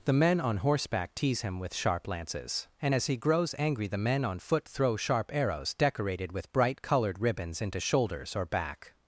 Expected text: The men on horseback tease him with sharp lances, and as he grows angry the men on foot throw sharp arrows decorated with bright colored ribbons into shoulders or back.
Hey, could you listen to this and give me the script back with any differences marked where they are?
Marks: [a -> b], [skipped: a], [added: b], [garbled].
The men on horseback tease him with sharp lances, and as he grows angry the men on foot throw sharp arrows decorated with bright colored ribbons into shoulders or back.